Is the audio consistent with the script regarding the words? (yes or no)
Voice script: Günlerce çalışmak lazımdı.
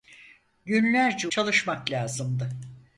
yes